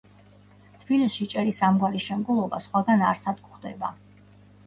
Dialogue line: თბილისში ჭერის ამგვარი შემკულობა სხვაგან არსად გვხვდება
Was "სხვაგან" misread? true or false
false